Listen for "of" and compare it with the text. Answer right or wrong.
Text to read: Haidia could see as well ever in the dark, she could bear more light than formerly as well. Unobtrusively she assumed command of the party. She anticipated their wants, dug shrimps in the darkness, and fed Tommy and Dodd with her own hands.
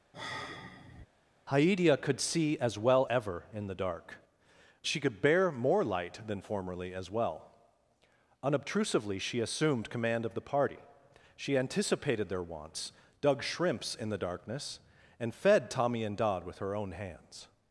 right